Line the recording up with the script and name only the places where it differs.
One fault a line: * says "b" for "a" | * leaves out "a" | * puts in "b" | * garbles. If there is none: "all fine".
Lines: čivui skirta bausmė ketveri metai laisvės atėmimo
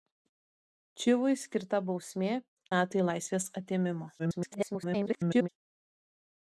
* leaves out "ketveri"
* garbles